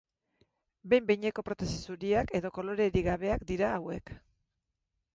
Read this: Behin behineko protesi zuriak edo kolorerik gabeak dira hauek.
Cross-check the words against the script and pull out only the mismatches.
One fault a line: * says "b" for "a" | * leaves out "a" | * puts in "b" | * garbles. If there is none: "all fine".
all fine